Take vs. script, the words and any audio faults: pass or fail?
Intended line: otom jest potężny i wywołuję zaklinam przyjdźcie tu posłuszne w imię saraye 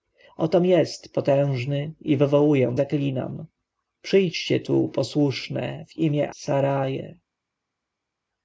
pass